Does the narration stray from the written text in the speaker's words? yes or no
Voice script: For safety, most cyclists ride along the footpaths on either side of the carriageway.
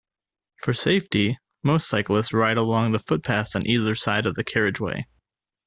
no